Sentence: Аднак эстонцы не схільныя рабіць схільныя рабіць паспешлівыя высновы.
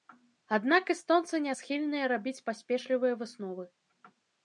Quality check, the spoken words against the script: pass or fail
fail